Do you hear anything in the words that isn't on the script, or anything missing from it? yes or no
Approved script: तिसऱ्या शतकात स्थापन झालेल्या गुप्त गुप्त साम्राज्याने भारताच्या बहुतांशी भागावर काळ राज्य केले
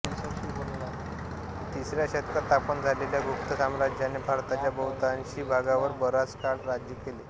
yes